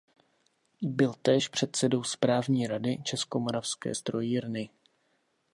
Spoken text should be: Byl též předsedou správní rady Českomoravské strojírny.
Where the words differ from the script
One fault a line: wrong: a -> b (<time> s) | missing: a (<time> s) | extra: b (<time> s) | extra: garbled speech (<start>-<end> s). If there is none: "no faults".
no faults